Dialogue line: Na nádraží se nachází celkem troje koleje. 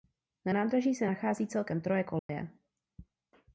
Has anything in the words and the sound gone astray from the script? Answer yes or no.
yes